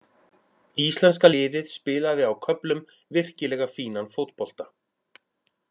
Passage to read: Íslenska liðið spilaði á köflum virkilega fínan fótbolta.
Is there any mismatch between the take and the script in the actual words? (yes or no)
no